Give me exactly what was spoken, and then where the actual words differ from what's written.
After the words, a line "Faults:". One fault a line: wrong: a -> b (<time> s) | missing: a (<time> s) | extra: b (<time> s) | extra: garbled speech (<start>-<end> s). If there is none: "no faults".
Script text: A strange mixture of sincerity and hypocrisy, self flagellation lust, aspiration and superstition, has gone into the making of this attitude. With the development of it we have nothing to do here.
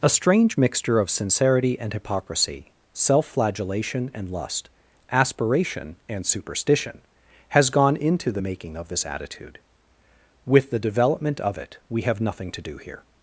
A strange mixture of sincerity and hypocrisy, self flagellation and lust, aspiration and superstition, has gone into the making of this attitude. With the development of it we have nothing to do here.
Faults:
extra: and (4.2 s)